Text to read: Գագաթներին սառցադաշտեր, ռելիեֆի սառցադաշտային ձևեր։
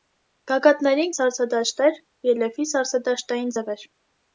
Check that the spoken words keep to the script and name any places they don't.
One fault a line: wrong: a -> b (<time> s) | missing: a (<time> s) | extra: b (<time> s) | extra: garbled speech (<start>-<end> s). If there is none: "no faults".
no faults